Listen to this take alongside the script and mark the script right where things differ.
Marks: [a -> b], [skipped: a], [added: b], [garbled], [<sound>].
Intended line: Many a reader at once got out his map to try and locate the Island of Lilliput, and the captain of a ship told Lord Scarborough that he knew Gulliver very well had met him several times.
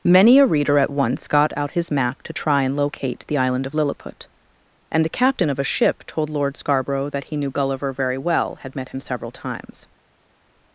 Many a reader at once got out his map to try and locate the Island of Lilliput, and the captain of a ship told Lord Scarborough that he knew Gulliver very well had met him several times.